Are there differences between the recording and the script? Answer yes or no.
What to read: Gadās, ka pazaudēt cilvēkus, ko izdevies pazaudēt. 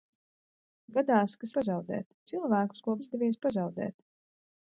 no